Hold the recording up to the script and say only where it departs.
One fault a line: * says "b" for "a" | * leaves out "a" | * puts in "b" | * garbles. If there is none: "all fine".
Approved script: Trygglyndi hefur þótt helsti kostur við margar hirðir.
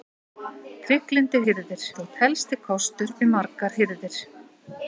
* says "hirðir" for "hefur"